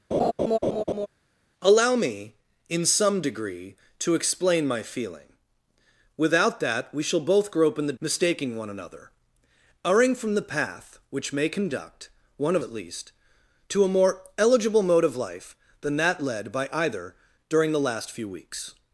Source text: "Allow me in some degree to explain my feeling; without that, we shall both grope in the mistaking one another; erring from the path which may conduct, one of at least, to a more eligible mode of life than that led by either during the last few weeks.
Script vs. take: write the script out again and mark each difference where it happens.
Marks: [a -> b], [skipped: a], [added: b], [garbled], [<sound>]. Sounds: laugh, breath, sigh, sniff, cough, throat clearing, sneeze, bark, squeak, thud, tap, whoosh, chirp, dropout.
[laugh] "Allow me in some degree to explain my feeling; without that, we shall both grope in the mistaking one another; erring from the path which may conduct, one of at least, to a more eligible mode of life than that led by either during the last few weeks.